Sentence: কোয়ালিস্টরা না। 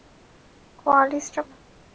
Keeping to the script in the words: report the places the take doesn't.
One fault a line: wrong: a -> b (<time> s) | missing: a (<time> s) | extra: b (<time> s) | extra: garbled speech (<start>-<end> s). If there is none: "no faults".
no faults